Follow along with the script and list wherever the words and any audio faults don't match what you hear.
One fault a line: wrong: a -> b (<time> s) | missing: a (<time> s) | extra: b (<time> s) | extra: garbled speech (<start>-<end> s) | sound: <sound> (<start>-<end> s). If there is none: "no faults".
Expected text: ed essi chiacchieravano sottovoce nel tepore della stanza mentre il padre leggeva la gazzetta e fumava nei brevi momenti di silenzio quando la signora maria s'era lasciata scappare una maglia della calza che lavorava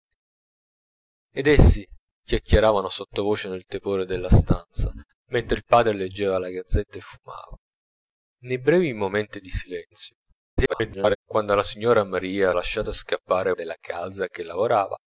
extra: garbled speech (10.6-11.2 s)
missing: s'era (12.5 s)
missing: una maglia (13.5 s)